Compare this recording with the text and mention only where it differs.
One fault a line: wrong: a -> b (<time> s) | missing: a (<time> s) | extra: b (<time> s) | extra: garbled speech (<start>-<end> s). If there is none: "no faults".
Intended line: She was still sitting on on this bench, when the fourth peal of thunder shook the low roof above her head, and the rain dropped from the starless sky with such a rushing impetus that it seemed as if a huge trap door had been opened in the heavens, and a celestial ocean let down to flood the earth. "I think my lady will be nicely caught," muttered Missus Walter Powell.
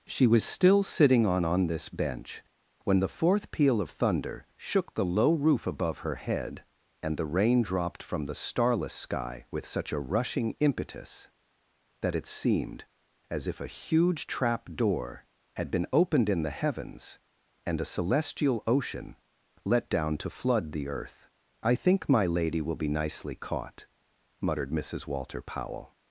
no faults